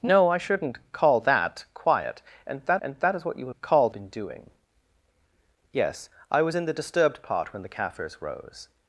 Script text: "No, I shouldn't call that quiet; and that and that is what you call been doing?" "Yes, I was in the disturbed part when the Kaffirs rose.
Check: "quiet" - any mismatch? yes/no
no